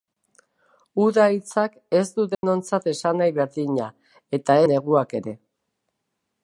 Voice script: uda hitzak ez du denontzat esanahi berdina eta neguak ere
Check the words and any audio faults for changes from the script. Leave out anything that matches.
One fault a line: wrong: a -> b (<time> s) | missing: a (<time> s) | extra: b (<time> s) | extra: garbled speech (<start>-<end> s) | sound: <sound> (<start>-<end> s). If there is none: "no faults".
sound: dropout (2.3-2.4 s)